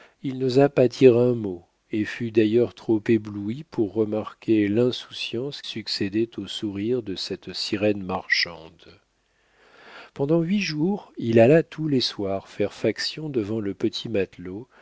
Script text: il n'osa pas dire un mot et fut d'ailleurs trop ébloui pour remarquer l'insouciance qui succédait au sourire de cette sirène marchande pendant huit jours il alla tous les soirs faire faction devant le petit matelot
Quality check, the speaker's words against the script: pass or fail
fail